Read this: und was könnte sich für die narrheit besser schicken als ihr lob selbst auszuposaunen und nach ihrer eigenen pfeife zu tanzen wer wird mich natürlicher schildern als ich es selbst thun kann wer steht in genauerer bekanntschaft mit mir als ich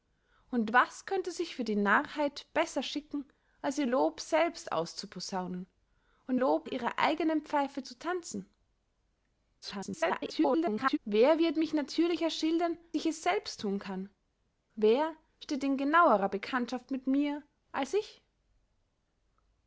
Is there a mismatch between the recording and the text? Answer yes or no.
yes